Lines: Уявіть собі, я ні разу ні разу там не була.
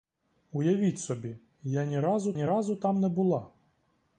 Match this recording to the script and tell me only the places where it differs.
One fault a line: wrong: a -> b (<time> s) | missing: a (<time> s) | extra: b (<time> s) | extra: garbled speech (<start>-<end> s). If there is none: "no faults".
no faults